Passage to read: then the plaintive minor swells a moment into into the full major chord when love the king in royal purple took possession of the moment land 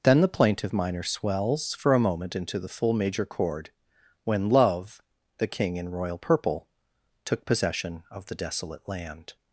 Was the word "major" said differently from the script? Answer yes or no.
no